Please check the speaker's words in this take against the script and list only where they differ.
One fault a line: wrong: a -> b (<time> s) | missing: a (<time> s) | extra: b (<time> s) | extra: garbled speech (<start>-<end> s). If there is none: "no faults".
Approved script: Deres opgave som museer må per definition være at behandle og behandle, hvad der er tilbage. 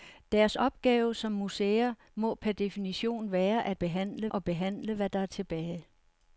no faults